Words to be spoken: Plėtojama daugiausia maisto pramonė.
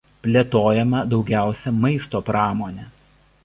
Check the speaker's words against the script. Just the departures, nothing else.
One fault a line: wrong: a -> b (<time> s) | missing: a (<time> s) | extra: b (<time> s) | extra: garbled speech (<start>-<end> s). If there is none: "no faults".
no faults